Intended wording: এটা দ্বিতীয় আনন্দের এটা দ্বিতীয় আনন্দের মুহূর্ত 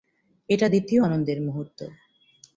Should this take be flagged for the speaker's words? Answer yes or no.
yes